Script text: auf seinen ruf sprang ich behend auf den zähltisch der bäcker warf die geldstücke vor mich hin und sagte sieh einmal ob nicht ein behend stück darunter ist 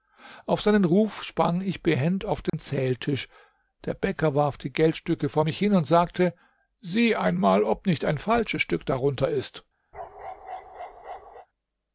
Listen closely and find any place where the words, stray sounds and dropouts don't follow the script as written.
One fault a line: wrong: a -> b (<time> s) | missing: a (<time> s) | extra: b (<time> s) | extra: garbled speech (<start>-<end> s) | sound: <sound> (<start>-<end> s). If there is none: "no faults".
sound: dropout (2.5-2.5 s)
wrong: behend -> falsches (8.2 s)
sound: bark (9.9-11.5 s)